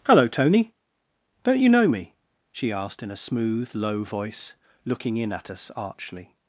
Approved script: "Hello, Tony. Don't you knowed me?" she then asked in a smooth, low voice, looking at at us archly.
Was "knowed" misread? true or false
true